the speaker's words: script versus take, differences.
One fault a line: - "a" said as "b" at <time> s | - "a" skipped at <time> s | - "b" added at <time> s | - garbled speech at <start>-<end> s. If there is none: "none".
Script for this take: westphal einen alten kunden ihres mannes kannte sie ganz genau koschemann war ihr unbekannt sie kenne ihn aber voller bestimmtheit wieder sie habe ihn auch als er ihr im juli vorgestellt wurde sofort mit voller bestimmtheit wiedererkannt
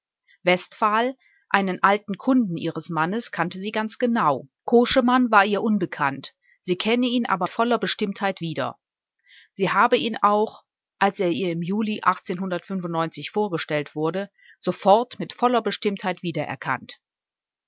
none